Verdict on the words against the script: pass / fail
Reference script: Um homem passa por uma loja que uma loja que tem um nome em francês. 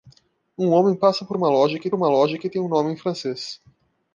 pass